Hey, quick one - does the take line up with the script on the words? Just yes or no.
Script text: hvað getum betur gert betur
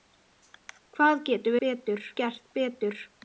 yes